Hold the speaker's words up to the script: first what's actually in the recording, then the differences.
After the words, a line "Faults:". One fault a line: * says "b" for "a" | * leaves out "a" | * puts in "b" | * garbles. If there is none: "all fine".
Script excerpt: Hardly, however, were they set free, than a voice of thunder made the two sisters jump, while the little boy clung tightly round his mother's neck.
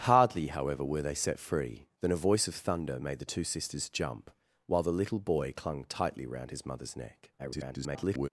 Hardly, however, were they set free, than a voice of thunder made the two sisters jump, while the little boy clung tightly round his mother's neck. [garbled]
Faults:
* garbles